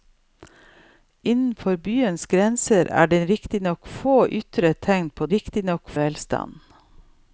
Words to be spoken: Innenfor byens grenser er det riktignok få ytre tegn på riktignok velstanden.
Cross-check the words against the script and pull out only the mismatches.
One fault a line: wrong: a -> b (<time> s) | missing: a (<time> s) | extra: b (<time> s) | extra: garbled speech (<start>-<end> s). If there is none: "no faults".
no faults